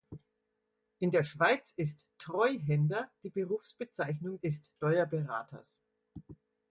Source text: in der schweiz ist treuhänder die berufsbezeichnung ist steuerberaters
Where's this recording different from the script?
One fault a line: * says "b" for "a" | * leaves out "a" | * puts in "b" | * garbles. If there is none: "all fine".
all fine